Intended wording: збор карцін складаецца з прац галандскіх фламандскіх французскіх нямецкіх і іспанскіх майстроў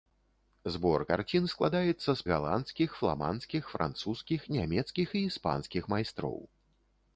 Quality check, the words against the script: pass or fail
fail